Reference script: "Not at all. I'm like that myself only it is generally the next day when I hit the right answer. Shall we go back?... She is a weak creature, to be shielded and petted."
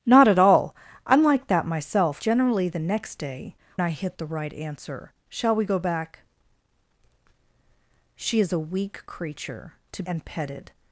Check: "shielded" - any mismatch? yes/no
yes